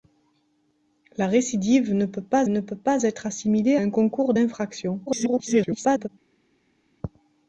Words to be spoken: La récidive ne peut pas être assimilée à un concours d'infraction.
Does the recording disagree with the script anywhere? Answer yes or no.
yes